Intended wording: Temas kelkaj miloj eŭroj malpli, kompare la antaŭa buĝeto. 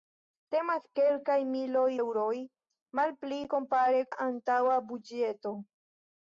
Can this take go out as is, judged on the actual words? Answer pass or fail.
pass